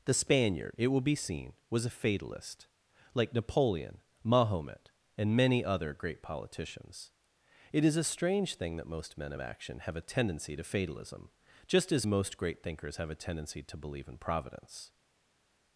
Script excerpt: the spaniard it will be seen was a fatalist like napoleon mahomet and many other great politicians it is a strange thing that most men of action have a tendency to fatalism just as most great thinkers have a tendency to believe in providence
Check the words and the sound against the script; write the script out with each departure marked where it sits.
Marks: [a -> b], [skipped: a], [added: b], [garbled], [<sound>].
the spaniard it will be seen was a fatalist like napoleon mahomet and many other great politicians it is a strange thing that most men of action have a tendency to fatalism just as most great thinkers have a tendency to believe in providence